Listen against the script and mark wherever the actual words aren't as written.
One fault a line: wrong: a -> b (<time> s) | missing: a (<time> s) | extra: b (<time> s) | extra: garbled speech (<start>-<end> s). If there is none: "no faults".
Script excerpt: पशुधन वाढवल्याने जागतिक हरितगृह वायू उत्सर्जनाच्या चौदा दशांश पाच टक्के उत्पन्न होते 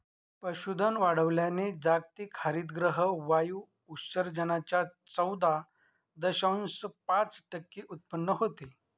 no faults